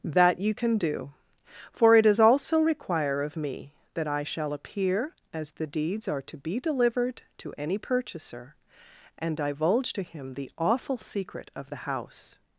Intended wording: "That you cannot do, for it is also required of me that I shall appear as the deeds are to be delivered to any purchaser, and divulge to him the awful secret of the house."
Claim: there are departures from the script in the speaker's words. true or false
true